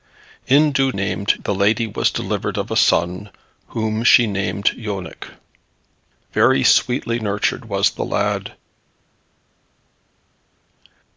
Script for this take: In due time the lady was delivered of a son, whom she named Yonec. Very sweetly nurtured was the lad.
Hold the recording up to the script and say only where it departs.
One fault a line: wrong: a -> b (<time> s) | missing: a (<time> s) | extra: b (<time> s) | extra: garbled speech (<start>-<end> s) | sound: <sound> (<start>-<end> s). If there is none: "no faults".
wrong: time -> named (0.9 s)